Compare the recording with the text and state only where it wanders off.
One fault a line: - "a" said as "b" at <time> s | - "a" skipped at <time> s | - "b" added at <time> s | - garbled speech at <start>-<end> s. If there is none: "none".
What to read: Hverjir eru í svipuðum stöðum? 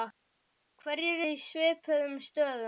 - "eru" skipped at 1.2 s